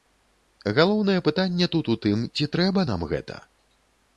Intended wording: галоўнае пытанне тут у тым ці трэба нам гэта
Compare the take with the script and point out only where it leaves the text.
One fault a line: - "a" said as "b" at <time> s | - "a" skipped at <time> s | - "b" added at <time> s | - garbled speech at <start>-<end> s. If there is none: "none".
none